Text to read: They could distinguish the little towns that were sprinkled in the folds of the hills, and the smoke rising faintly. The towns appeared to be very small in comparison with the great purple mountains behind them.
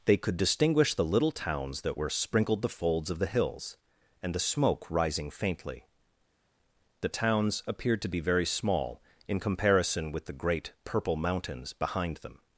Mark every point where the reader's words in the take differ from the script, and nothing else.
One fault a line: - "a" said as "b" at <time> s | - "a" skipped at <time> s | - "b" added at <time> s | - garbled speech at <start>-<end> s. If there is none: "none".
- "in" skipped at 2.6 s